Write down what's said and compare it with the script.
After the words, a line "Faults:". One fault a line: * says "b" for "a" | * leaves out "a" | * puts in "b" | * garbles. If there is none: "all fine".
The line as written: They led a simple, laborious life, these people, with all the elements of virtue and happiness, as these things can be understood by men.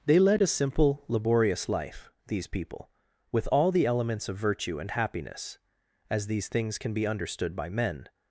They led a simple, laborious life, these people, with all the elements of virtue and happiness, as these things can be understood by men.
Faults:
all fine